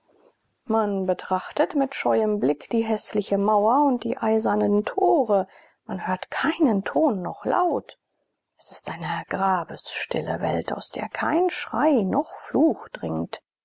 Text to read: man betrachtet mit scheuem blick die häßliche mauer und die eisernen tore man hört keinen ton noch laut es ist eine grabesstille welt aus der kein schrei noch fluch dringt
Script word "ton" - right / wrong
right